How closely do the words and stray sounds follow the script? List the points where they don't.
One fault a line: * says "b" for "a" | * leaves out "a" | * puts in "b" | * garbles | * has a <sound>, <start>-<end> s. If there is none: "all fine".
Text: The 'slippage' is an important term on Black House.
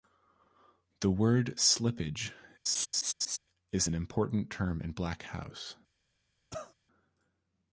* puts in "word"
* has a laugh, 2.7-3.4 s
* says "in" for "on"
* has a cough, 6.5-6.7 s